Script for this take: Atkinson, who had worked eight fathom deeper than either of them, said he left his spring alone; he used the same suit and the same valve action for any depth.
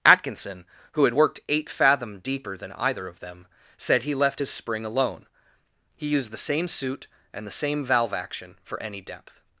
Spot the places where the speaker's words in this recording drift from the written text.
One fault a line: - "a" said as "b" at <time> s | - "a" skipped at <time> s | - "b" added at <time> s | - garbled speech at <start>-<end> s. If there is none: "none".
none